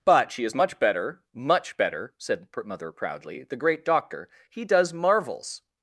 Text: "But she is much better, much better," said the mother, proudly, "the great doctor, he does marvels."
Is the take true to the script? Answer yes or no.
no